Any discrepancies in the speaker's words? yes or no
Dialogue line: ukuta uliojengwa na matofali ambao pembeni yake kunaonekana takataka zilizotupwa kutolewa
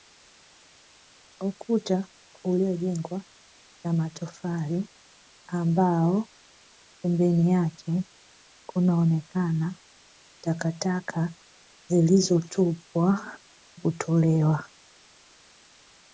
no